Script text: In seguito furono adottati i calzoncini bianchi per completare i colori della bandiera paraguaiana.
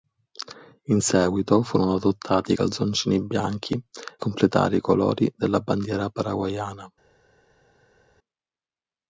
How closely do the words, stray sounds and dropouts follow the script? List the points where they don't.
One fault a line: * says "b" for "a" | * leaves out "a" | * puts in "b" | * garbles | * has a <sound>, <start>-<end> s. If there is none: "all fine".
* leaves out "per"